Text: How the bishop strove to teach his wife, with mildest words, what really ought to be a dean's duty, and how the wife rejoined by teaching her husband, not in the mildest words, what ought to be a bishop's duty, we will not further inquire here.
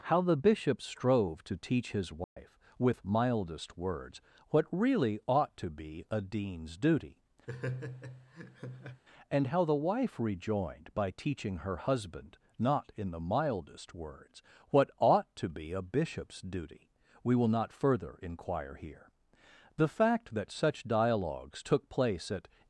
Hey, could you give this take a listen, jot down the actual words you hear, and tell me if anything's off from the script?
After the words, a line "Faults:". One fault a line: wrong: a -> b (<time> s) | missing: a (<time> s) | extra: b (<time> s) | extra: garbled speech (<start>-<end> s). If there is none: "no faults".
How the bishop strove to teach his wife, with mildest words, what really ought to be a dean's duty, and how the wife rejoined by teaching her husband, not in the mildest words, what ought to be a bishop's duty, we will not further inquire here. The fact that such dialogues took place at
Faults:
extra: The fact that such dialogues took place at (19.8 s)